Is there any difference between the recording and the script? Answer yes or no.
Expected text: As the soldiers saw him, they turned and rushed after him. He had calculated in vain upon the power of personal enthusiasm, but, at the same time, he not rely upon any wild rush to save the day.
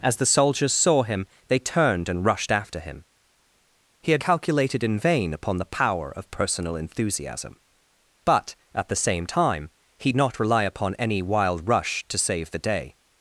no